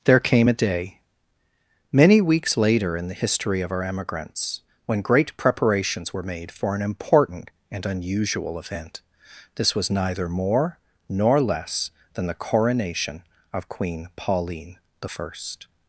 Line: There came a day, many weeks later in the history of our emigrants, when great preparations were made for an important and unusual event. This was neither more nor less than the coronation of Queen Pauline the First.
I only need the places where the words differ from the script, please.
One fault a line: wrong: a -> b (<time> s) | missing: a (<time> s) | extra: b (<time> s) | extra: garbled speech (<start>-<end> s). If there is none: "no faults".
no faults